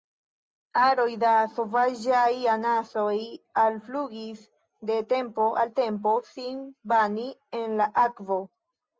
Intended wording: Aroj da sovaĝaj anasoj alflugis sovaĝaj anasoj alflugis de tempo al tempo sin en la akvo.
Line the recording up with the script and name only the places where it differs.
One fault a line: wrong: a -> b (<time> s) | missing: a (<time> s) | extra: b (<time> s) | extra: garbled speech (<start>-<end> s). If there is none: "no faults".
missing: sovaĝaj anasoj alflugis (4.5 s)
extra: bani (7.0 s)